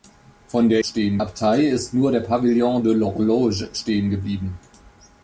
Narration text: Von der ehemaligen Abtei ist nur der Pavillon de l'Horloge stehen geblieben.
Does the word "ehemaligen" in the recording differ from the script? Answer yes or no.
yes